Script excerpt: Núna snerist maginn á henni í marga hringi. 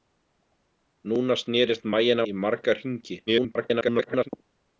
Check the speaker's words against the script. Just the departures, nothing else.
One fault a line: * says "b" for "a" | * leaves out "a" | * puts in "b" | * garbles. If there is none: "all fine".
* leaves out "henni"
* garbles